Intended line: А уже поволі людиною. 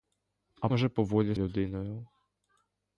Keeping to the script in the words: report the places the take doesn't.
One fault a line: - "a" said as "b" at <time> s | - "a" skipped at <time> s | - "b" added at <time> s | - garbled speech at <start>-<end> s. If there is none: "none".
none